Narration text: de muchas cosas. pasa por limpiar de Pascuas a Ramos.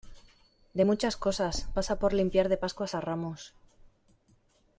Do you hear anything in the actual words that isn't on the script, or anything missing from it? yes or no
no